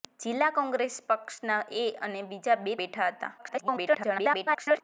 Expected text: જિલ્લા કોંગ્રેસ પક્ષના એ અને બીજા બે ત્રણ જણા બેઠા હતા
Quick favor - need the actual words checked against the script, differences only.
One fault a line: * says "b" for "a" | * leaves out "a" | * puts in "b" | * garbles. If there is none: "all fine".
* leaves out "ત્રણ જણા"
* garbles